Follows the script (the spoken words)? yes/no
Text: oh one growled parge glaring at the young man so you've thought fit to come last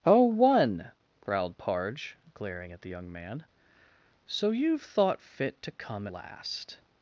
yes